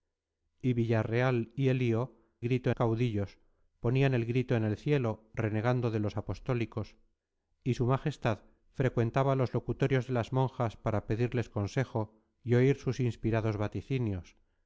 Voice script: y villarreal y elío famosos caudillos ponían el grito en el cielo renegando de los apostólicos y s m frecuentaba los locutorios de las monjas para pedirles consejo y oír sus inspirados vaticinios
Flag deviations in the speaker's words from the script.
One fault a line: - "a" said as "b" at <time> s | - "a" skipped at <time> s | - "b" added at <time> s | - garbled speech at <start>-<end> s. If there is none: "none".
- "famosos" said as "grito" at 2.4 s